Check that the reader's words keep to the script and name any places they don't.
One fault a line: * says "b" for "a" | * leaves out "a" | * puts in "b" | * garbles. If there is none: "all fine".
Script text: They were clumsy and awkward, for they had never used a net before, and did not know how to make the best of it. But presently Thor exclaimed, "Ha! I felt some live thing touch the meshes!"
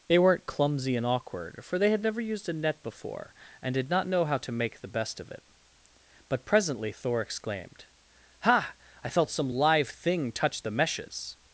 * says "weren't" for "were"